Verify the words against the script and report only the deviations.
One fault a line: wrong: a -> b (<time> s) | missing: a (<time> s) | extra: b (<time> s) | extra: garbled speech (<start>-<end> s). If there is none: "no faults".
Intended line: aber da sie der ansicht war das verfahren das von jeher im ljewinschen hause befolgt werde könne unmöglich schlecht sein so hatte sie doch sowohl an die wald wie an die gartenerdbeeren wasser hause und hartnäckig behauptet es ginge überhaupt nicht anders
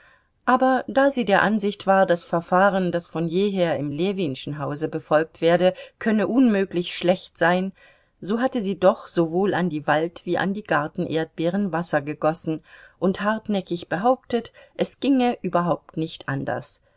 wrong: hause -> gegossen (12.0 s)